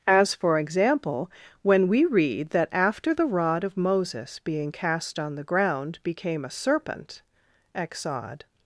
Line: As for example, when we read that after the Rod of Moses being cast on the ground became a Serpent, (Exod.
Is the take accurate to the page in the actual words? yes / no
yes